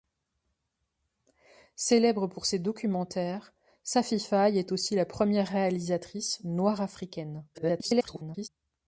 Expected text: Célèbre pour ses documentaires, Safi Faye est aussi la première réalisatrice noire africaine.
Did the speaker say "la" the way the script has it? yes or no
yes